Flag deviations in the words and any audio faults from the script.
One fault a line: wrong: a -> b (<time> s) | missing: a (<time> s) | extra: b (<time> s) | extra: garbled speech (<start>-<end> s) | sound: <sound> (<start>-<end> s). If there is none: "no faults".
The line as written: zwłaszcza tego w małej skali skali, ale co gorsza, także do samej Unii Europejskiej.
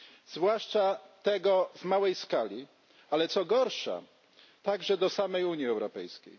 missing: skali (2.7 s)